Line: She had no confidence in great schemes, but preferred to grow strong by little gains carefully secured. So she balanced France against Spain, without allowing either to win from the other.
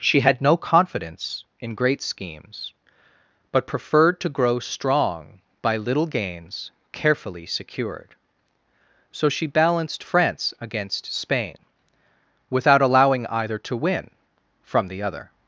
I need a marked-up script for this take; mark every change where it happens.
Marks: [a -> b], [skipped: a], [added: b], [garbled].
She had no confidence in great schemes, but preferred to grow strong by little gains carefully secured. So she balanced France against Spain, without allowing either to win from the other.